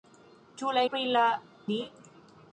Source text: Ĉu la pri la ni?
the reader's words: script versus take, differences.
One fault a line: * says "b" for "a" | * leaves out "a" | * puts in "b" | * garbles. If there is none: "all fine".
all fine